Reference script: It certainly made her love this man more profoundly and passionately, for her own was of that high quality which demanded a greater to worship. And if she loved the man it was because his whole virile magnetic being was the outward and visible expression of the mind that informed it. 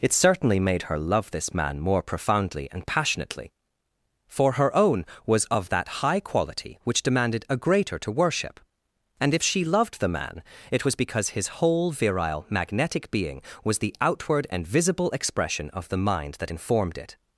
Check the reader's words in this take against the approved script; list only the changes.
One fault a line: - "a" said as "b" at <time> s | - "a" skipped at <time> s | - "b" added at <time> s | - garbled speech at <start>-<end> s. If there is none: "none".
none